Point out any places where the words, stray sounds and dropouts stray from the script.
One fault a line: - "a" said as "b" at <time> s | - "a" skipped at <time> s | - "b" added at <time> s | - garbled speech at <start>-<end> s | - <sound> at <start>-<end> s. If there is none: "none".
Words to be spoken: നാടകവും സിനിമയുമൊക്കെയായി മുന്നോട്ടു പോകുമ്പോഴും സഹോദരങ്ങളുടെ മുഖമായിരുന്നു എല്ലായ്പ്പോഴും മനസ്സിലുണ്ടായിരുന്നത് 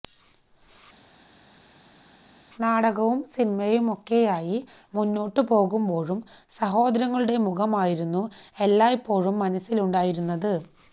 none